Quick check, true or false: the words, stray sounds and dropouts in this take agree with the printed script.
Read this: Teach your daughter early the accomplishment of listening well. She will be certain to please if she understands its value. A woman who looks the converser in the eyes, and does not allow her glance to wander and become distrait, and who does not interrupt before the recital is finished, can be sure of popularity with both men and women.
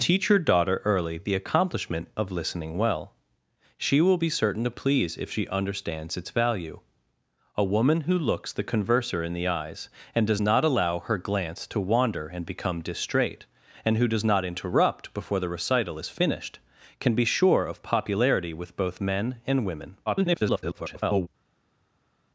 false